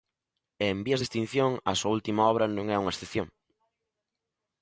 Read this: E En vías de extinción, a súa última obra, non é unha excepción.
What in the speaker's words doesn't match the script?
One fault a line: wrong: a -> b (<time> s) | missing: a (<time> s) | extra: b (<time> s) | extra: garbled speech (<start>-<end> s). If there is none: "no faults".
no faults